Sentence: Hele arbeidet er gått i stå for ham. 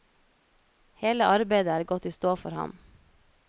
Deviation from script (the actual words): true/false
false